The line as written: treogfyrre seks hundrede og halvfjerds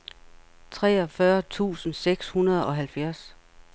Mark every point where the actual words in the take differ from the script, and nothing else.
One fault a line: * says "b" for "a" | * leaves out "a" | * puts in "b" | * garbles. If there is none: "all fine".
* puts in "tusind"